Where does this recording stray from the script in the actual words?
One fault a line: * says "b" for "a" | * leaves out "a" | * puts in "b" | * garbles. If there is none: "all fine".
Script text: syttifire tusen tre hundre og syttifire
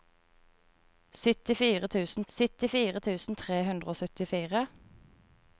* puts in "syttifire tusen"